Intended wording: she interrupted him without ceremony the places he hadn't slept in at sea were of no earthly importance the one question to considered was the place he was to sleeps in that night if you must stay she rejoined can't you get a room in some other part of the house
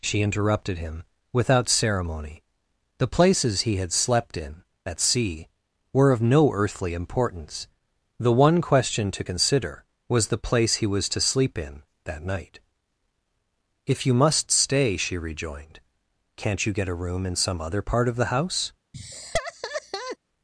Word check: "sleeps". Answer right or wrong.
wrong